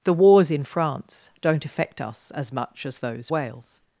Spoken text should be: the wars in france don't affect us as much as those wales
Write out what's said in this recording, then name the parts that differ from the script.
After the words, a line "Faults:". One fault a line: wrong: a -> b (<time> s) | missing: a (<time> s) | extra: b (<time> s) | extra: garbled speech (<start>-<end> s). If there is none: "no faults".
the wars in france don't affect us as much as those wales
Faults:
no faults